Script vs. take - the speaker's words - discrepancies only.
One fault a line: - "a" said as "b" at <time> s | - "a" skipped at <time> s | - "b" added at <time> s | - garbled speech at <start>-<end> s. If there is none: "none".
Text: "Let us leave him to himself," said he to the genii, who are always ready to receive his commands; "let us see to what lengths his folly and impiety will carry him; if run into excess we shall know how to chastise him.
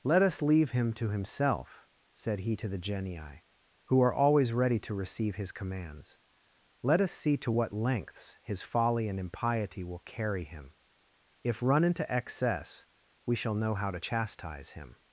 none